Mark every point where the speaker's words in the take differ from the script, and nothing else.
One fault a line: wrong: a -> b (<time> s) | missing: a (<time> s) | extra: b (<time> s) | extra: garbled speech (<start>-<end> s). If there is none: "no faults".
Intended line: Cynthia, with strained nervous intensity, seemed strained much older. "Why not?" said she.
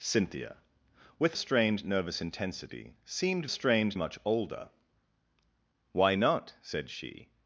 no faults